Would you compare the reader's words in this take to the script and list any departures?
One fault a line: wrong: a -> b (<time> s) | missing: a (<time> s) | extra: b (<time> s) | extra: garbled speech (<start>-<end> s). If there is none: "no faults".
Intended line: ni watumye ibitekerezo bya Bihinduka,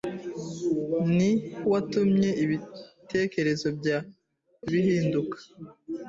no faults